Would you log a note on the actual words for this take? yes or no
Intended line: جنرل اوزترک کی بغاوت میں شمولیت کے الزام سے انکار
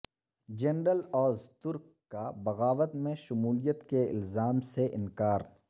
yes